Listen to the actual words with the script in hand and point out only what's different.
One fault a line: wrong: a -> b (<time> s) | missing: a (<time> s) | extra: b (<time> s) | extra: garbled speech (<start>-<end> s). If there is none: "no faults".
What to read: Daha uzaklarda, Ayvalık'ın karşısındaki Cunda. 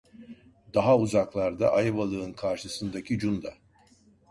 no faults